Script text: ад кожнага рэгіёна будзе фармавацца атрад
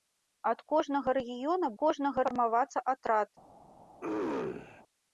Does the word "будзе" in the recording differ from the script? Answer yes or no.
yes